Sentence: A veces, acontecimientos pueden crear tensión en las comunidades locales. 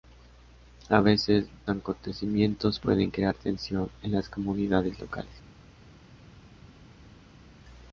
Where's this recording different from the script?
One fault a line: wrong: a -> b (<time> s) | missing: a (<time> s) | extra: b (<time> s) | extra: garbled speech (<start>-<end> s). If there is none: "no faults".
no faults